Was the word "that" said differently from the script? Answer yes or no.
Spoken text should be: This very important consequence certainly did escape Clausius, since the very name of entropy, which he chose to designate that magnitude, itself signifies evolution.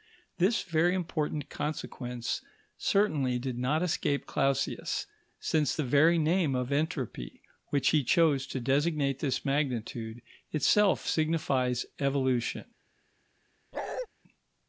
yes